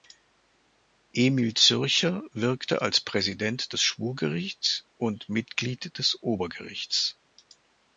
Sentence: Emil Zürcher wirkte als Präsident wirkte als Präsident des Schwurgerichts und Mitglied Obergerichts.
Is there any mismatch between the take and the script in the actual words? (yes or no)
yes